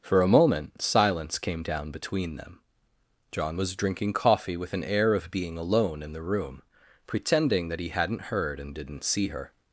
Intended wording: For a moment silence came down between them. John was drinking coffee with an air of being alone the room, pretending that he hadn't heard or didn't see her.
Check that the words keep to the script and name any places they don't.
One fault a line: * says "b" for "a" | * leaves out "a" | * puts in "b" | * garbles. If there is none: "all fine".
* puts in "in"
* says "and" for "or"